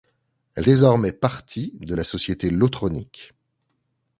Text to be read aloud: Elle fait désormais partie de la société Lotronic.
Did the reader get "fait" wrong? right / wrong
wrong